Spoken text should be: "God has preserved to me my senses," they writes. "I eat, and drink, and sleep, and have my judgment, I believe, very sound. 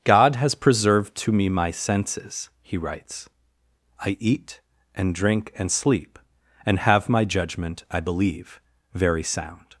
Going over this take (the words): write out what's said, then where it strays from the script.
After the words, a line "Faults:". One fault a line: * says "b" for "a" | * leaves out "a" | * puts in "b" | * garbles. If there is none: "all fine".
"God has preserved to me my senses," he writes. "I eat, and drink, and sleep, and have my judgment, I believe, very sound.
Faults:
* says "he" for "they"